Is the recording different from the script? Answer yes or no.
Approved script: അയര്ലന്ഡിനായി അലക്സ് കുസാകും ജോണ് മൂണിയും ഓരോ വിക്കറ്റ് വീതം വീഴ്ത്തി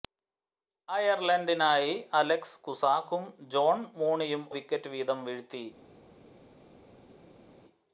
yes